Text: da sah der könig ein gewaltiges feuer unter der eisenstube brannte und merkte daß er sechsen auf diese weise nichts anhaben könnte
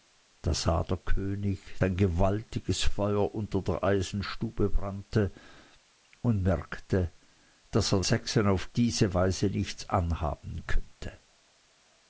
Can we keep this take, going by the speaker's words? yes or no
yes